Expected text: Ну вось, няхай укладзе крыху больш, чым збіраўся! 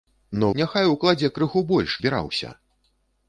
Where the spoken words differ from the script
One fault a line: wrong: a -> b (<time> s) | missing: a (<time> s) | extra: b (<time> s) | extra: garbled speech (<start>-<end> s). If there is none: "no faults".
missing: вось (0.5 s)
missing: чым (2.0 s)